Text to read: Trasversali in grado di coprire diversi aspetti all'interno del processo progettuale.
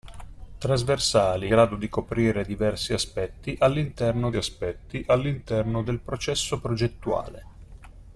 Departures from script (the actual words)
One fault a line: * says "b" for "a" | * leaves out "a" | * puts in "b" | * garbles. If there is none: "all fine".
* leaves out "in"
* puts in "aspetti all'interno"